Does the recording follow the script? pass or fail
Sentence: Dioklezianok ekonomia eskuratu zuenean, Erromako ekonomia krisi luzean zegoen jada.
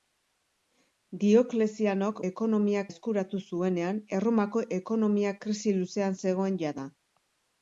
pass